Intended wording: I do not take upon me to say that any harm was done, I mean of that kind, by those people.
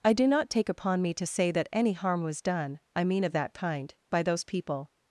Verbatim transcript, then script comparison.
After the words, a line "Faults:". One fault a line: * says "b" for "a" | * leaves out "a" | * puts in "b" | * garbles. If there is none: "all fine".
I do not take upon me to say that any harm was done, I mean of that kind, by those people.
Faults:
all fine